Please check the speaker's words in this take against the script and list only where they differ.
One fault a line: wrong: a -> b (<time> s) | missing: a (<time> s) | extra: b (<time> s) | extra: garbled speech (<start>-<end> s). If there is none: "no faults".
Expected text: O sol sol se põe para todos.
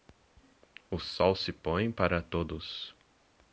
missing: sol (1.4 s)